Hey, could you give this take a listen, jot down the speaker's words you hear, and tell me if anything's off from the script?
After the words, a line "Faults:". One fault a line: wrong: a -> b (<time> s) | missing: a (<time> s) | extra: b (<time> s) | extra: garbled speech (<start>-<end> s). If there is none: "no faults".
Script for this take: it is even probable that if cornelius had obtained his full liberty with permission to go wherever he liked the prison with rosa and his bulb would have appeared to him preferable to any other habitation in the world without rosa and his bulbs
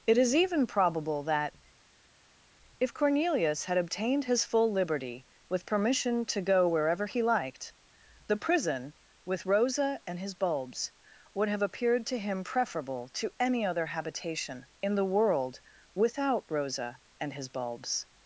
it is even probable that if cornelius had obtained his full liberty with permission to go wherever he liked the prison with rosa and his bulbs would have appeared to him preferable to any other habitation in the world without rosa and his bulbs
Faults:
wrong: bulb -> bulbs (10.3 s)